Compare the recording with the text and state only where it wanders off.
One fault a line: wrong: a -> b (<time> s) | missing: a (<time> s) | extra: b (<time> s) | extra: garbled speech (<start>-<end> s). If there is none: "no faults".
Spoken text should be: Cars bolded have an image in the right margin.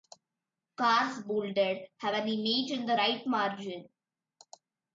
no faults